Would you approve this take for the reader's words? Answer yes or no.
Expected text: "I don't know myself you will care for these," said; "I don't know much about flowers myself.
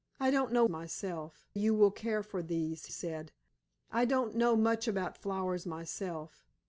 yes